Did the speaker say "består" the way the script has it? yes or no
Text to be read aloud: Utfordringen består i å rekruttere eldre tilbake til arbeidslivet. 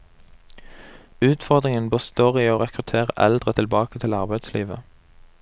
yes